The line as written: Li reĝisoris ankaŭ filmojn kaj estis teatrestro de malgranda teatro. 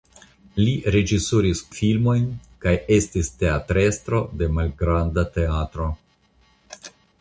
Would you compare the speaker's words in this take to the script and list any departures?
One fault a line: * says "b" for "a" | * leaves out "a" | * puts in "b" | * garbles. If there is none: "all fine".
* leaves out "ankaŭ"